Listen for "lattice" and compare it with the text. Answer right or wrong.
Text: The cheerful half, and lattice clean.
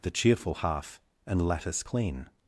right